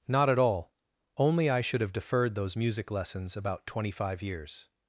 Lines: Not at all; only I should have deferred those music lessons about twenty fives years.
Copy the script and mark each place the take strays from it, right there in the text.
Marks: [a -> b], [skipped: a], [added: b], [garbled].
Not at all; only I should have deferred those music lessons about twenty [fives -> five] years.